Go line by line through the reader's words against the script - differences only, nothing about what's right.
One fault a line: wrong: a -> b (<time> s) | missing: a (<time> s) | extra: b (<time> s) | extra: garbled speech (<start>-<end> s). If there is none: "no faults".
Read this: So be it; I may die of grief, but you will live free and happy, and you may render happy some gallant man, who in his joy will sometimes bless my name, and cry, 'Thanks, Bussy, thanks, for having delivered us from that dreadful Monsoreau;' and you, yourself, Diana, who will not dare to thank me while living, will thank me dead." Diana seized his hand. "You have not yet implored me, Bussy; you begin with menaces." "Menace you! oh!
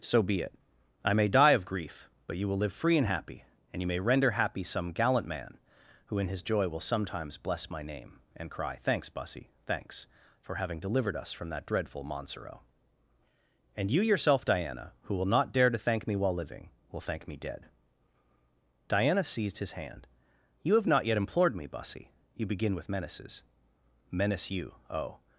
no faults